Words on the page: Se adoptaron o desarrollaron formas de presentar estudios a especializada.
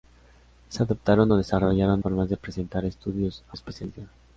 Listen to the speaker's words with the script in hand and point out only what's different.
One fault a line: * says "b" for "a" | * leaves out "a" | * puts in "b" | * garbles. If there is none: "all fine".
all fine